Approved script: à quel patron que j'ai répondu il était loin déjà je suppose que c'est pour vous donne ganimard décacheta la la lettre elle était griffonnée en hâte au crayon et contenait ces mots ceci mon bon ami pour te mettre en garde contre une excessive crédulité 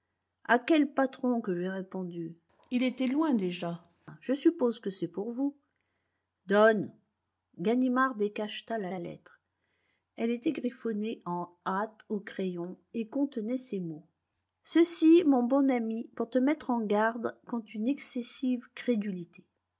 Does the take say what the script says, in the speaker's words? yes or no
yes